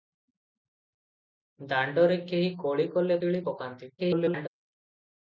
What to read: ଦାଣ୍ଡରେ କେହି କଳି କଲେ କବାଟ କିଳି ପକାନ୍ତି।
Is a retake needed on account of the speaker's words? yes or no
yes